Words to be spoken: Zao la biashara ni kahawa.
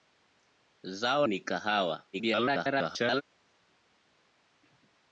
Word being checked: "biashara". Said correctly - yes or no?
no